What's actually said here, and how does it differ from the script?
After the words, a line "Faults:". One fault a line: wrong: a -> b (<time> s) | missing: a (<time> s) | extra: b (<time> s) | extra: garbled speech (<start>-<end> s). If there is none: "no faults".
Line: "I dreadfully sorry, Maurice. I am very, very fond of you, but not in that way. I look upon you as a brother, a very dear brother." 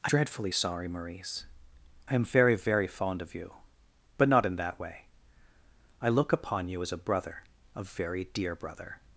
"I dreadfully sorry, Maurice. I am very, very fond of you, but not in that way. I look upon you as a brother, a very dear brother."
Faults:
no faults